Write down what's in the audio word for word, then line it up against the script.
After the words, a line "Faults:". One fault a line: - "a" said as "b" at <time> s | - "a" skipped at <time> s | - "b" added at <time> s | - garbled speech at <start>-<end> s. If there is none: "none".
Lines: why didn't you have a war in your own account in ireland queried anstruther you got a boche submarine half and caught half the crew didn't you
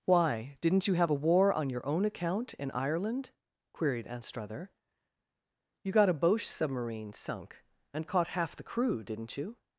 why didn't you have a war on your own account in ireland queried anstruther you got a boche submarine sunk and caught half the crew didn't you
Faults:
- "in" said as "on" at 1.5 s
- "half" said as "sunk" at 7.1 s